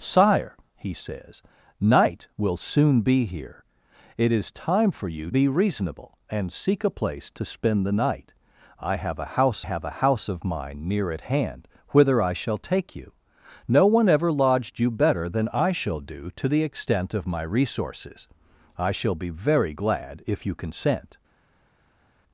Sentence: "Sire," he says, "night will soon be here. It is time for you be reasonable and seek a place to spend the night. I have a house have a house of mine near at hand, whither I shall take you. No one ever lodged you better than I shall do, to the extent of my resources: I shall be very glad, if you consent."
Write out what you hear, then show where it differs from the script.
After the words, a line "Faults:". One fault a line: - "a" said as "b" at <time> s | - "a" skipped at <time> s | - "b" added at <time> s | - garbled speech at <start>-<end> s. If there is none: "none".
"Sire," he says, "night will soon be here. It is time for you be reasonable and seek a place to spend the night. I have a house have a house of mine near at hand, whither I shall take you. No one ever lodged you better than I shall do, to the extent of my resources: I shall be very glad, if you consent."
Faults:
none